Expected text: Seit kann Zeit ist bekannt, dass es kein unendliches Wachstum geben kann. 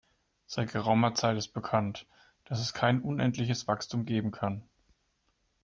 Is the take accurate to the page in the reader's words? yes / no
no